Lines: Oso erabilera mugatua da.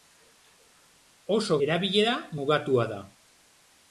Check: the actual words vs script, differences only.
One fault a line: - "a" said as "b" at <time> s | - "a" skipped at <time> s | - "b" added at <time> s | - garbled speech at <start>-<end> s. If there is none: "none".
none